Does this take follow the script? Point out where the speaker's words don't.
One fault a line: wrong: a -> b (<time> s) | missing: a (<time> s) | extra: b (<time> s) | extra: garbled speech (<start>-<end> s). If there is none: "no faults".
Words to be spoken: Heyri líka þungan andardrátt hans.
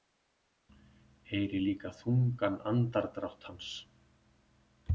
no faults